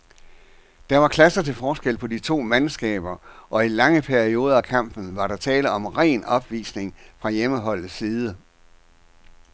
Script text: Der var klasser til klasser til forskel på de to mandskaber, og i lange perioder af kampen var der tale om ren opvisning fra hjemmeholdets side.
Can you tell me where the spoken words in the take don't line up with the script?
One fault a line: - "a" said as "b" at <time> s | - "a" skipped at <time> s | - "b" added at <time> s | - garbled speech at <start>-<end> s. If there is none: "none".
- "klasser til" skipped at 1.5 s